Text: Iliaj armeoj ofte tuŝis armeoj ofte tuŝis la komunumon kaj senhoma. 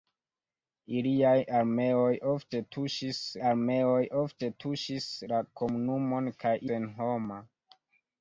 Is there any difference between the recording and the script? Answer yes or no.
no